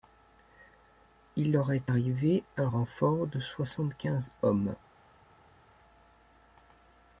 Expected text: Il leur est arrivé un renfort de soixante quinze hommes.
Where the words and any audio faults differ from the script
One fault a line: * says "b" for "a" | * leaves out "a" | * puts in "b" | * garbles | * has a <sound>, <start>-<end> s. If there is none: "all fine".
all fine